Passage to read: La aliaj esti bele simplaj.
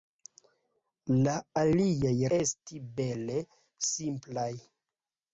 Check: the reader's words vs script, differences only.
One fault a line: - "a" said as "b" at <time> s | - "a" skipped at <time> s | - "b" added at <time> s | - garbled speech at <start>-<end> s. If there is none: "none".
none